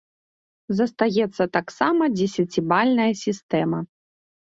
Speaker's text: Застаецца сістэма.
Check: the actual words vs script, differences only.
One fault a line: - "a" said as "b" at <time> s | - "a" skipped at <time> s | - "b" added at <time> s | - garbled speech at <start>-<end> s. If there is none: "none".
- "таксама дзесяцібальная" added at 1.6 s